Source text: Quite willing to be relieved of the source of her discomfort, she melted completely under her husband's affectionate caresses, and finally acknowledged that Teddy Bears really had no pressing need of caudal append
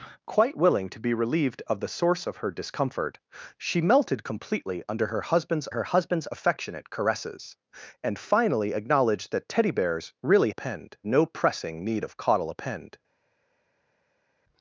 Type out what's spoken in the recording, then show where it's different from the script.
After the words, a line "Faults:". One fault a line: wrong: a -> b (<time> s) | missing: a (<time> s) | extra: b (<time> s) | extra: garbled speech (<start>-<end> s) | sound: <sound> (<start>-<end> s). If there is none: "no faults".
Quite willing to be relieved of the source of her discomfort, she melted completely under her husband's her husband's affectionate caresses, and finally acknowledged that Teddy Bears really append no pressing need of caudal append
Faults:
extra: her husband's (5.7 s)
wrong: had -> append (10.5 s)